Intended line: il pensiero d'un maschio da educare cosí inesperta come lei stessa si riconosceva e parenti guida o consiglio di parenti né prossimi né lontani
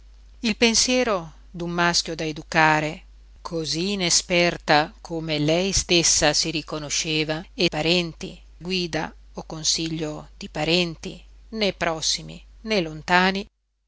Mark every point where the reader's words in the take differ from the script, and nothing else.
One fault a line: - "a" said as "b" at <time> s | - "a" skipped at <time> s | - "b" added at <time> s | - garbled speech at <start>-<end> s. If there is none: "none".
none